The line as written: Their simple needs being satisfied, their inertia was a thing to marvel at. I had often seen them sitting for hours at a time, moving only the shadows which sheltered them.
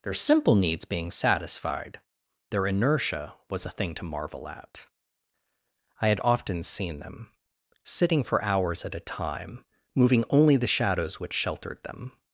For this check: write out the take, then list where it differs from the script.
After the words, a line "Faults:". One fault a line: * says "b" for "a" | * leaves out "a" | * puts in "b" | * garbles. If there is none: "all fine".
Their simple needs being satisfied, their inertia was a thing to marvel at. I had often seen them sitting for hours at a time, moving only the shadows which sheltered them.
Faults:
all fine